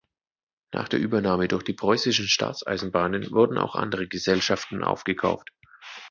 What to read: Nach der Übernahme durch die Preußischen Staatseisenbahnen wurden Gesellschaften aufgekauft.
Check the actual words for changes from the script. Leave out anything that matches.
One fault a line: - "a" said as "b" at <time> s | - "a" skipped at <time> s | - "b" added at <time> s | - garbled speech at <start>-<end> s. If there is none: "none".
- "auch andere" added at 3.6 s